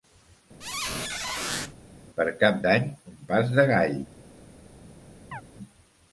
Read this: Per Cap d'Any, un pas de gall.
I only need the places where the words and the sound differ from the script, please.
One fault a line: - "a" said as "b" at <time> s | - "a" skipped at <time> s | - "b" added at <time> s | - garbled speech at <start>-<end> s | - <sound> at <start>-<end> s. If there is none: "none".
- squeak at 0.6-1.7 s
- chirp at 5.3-5.4 s